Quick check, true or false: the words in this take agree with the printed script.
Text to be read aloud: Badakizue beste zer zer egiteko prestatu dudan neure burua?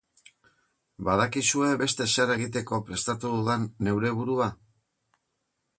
false